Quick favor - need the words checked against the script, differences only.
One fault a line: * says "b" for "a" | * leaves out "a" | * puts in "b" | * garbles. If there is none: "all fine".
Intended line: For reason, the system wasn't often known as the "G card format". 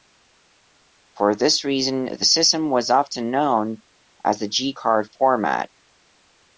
* puts in "this"
* says "was" for "wasn't"